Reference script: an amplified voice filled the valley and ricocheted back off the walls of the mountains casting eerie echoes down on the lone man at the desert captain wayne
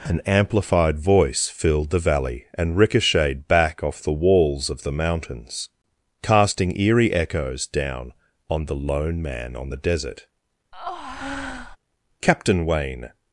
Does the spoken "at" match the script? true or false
false